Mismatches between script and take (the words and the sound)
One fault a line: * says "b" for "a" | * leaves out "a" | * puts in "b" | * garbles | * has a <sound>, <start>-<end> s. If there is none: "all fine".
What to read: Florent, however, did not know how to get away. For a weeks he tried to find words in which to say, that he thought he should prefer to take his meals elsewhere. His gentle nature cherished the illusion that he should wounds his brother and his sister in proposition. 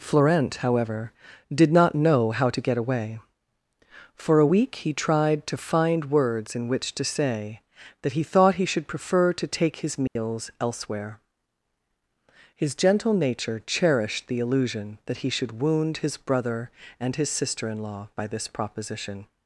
* says "week" for "weeks"
* has a dropout, 10.1-10.2 s
* says "wound" for "wounds"
* puts in "law by this"